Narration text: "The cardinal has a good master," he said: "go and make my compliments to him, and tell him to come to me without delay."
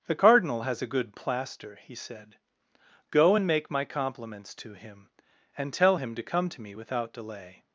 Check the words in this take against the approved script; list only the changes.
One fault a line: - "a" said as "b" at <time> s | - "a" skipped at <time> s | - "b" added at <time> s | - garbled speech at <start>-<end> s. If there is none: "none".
- "master" said as "plaster" at 1.1 s